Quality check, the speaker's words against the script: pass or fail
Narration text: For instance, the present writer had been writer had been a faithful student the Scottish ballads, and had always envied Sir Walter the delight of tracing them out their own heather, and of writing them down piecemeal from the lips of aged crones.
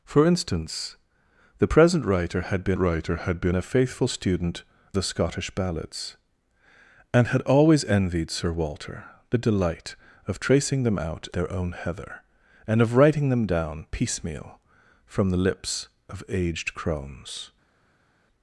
pass